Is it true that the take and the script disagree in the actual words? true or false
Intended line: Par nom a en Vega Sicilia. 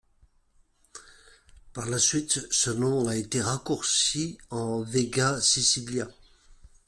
true